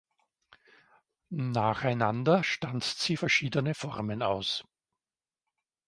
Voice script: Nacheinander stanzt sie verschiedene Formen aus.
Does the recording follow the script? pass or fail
pass